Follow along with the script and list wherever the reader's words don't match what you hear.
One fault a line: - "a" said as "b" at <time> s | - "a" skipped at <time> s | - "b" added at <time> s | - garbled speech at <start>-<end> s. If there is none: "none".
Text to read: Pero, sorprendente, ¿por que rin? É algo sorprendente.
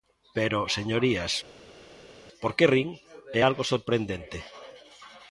- "sorprendente" said as "señorías" at 0.8 s